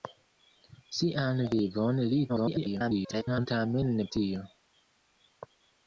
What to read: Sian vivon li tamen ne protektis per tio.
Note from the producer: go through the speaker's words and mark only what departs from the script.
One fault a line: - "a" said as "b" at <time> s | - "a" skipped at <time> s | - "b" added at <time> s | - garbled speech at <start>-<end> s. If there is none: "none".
- garbled speech at 2.3-3.5 s
- "protektis per" skipped at 4.1 s